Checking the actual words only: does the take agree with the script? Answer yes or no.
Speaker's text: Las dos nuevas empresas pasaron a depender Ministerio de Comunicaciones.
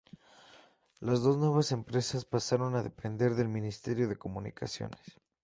no